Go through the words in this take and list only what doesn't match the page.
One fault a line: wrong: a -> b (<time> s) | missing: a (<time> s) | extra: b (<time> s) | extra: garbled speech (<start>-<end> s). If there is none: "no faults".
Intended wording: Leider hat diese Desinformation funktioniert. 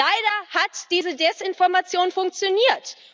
no faults